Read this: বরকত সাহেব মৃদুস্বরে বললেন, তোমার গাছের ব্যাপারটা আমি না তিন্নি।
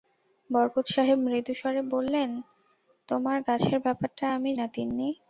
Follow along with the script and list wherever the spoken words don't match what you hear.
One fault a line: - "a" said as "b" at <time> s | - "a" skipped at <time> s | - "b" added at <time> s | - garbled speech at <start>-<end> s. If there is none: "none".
none